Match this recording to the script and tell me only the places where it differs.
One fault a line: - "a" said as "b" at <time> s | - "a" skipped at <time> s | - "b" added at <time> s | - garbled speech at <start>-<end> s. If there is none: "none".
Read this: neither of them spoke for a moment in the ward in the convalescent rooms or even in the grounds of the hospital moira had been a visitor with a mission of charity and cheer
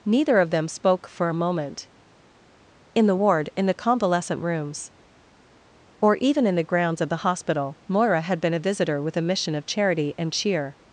none